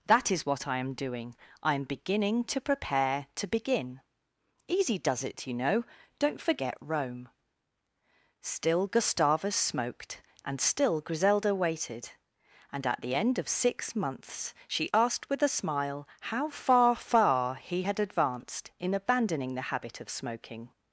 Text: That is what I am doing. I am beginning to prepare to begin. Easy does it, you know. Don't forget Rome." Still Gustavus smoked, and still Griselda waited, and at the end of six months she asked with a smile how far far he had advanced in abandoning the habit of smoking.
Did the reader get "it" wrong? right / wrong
right